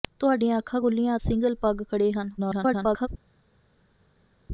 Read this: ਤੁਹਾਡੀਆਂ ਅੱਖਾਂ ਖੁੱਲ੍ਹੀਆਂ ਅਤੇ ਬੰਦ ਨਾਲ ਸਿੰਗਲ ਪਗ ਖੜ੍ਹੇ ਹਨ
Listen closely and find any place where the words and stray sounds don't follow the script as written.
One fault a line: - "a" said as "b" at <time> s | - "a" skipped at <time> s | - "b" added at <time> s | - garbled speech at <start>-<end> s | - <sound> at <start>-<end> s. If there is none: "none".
- "ਅਤੇ ਬੰਦ ਨਾਲ" skipped at 1.2 s
- garbled speech at 2.4-3.1 s